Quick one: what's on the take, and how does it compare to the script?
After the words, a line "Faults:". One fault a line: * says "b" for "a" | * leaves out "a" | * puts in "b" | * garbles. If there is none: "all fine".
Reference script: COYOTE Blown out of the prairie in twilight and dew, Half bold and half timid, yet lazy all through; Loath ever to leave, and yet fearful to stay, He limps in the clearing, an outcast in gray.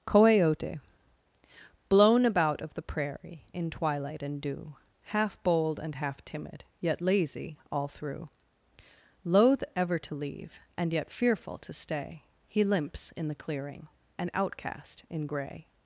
COYOTE Blown about of the prairie in twilight and dew, Half bold and half timid, yet lazy all through; Loath ever to leave, and yet fearful to stay, He limps in the clearing, an outcast in gray.
Faults:
* says "about" for "out"